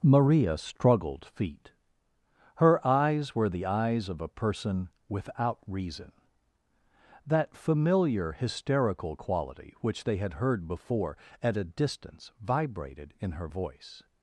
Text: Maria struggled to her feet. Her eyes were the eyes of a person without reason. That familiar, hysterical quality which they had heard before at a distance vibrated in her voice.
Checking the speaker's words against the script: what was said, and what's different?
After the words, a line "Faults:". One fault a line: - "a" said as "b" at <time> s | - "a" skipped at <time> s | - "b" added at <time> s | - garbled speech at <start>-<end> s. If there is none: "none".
Maria struggled feet. Her eyes were the eyes of a person without reason. That familiar, hysterical quality which they had heard before at a distance vibrated in her voice.
Faults:
- "to her" skipped at 1.2 s